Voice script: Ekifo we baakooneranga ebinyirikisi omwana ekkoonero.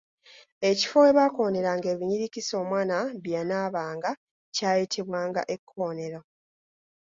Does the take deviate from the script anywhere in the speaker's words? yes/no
yes